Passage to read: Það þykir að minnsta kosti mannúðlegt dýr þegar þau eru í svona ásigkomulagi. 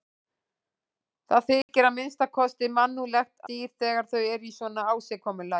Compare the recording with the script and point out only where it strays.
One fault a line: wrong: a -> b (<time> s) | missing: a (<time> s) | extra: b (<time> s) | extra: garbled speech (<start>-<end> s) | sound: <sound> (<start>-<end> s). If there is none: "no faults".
sound: dropout (1.6-1.7 s)